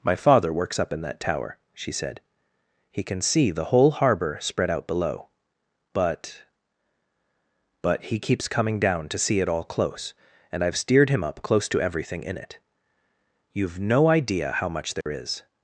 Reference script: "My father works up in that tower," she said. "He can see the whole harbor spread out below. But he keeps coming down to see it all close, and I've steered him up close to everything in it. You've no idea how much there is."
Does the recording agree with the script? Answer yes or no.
no